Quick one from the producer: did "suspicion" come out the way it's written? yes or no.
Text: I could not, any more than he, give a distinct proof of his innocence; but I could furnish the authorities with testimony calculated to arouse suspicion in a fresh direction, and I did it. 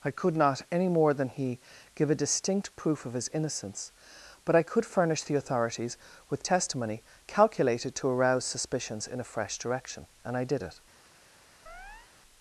no